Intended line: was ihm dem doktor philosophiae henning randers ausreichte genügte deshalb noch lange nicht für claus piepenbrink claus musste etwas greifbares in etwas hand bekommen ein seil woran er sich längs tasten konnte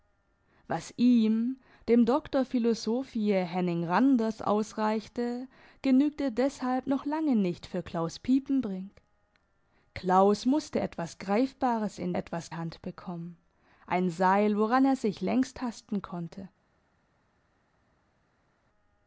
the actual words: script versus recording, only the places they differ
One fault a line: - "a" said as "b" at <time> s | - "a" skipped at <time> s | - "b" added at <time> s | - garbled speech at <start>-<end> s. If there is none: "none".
none